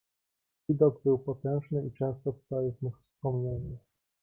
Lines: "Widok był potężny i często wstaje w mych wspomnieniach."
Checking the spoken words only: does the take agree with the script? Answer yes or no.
yes